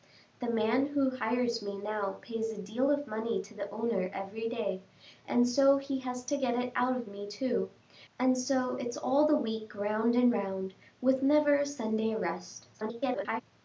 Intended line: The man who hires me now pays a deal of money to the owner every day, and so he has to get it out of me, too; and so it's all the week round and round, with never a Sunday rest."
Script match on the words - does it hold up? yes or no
no